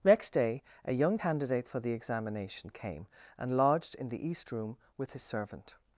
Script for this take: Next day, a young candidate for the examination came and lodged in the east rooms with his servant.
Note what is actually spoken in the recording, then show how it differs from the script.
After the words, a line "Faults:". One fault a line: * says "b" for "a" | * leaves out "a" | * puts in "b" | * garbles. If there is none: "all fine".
Next day, a young candidate for the examination came and lodged in the east room with his servant.
Faults:
* says "room" for "rooms"